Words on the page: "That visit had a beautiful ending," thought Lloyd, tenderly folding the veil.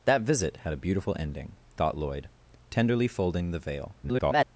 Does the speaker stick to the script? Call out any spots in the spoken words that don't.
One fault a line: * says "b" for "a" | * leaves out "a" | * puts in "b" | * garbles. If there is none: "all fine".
* garbles